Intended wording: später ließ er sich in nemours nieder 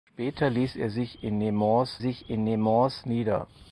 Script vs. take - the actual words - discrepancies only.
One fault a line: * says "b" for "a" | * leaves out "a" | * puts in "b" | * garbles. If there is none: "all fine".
* puts in "sich in nemours"